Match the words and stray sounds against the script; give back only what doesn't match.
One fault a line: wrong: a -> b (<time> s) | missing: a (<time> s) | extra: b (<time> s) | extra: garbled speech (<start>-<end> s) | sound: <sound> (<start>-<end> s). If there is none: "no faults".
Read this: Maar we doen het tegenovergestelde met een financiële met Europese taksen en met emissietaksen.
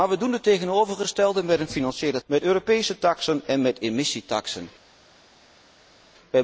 no faults